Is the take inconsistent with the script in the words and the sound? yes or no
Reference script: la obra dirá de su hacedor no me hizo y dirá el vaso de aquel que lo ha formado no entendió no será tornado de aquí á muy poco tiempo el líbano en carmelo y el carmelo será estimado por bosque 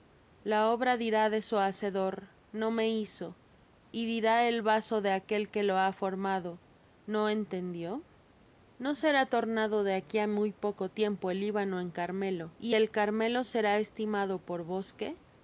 no